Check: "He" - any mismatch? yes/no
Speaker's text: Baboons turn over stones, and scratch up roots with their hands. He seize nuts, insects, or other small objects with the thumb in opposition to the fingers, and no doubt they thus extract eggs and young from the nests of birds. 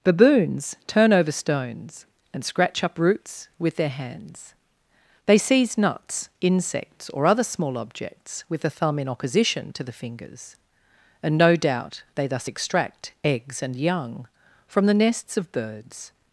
yes